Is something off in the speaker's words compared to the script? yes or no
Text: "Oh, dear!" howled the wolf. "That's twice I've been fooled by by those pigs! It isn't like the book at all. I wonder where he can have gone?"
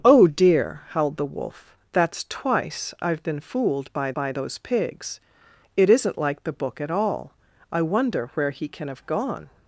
no